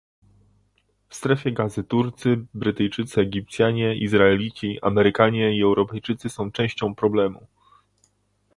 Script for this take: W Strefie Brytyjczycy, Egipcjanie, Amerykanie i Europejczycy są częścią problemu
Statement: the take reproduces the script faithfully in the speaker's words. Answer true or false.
false